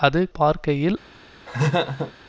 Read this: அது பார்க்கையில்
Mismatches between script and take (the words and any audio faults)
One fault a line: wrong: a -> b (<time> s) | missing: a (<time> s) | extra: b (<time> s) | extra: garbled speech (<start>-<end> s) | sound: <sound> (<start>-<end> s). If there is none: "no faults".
sound: laugh (1.5-2.1 s)